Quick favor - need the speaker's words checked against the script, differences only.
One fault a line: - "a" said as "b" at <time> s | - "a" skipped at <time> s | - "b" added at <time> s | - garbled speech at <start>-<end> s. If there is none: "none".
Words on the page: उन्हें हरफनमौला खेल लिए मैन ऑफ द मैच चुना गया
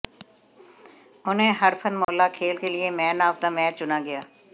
- "के" added at 2.5 s